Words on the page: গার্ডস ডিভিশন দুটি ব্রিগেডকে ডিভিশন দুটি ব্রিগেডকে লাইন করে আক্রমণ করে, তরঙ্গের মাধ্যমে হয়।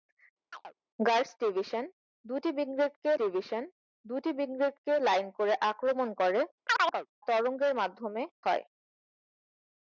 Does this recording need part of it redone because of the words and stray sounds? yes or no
yes